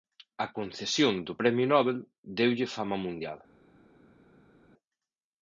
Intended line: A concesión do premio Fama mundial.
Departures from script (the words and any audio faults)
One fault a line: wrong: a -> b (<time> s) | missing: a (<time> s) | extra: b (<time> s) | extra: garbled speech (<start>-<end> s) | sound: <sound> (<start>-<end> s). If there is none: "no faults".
extra: Nobel deulle (1.7 s)